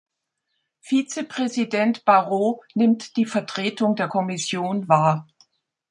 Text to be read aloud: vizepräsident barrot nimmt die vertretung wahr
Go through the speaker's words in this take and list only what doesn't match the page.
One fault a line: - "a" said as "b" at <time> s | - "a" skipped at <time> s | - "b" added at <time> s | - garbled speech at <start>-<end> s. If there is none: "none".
- "der kommission" added at 4.0 s